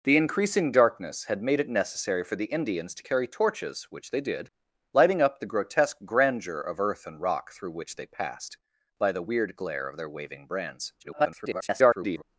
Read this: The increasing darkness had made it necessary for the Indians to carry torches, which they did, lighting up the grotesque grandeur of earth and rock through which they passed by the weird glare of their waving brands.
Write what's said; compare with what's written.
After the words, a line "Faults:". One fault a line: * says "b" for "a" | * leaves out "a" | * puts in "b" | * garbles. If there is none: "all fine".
The increasing darkness had made it necessary for the Indians to carry torches, which they did, lighting up the grotesque grandeur of earth and rock through which they passed by the weird glare of their waving brands. [garbled]
Faults:
* garbles